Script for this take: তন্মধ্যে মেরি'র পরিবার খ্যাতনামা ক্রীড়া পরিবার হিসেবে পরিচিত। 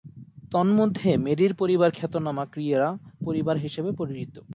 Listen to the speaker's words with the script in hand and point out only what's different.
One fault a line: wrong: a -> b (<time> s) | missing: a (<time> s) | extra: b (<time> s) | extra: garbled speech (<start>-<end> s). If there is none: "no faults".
no faults